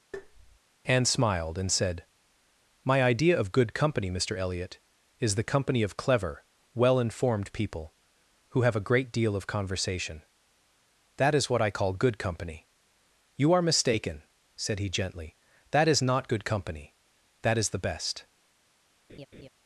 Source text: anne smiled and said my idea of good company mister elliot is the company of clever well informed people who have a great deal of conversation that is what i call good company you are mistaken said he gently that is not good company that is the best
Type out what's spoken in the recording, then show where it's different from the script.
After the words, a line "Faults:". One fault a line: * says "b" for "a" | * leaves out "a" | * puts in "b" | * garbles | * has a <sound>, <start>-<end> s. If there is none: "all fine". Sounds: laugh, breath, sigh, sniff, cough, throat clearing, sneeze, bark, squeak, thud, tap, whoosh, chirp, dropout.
anne smiled and said my idea of good company mister elliot is the company of clever well informed people who have a great deal of conversation that is what i call good company you are mistaken said he gently that is not good company that is the best
Faults:
* has a tap, 0.1-0.6 s
* has a laugh, 19.1-19.5 s